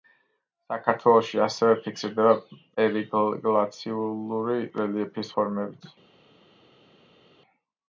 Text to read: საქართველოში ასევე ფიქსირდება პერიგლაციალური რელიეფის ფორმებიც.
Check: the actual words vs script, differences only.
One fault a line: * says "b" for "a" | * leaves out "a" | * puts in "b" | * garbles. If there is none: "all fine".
all fine